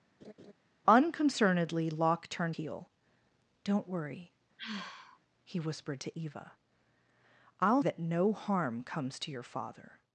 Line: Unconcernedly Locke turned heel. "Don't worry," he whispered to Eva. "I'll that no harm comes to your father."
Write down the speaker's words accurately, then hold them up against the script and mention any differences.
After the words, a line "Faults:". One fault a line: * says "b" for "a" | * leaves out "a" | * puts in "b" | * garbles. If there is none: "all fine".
Unconcernedly Locke turned heel. "Don't worry," he whispered to Eva. "I'll that no harm comes to your father."
Faults:
all fine